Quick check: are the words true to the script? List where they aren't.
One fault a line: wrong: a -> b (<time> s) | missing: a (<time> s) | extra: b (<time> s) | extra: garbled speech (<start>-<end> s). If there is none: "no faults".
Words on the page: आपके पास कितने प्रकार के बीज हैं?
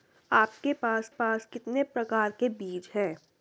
extra: पास (1.1 s)